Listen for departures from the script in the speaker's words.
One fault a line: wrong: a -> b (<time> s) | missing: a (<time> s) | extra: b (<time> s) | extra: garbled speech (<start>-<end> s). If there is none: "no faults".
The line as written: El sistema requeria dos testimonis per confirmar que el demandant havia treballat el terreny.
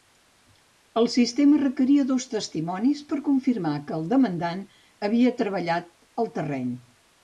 no faults